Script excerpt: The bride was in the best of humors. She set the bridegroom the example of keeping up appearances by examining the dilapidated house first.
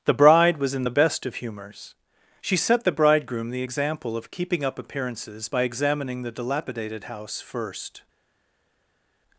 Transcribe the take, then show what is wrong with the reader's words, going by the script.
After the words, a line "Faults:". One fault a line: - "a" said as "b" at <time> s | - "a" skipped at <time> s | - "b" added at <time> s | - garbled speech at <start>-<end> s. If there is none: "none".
The bride was in the best of humors. She set the bridegroom the example of keeping up appearances by examining the dilapidated house first.
Faults:
none